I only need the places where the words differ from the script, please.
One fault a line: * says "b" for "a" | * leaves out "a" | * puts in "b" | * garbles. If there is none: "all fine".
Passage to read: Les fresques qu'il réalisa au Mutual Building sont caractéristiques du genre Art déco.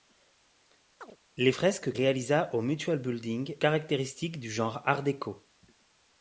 * leaves out "qu'il"
* leaves out "sont"